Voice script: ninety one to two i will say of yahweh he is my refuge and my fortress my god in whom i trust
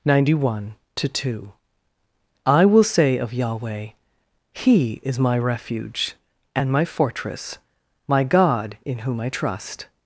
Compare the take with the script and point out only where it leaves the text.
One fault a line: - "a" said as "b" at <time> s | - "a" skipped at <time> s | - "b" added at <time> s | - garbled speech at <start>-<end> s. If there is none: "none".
none